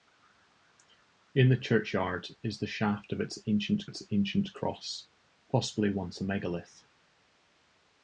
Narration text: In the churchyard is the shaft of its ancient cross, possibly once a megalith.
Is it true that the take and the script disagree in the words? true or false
true